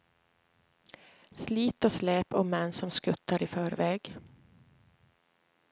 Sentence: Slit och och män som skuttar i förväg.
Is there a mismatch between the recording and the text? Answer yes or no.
yes